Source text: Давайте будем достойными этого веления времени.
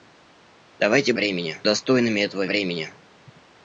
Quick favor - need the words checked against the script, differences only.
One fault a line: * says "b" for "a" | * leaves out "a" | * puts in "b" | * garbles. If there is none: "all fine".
* says "времени" for "будем"
* leaves out "веления"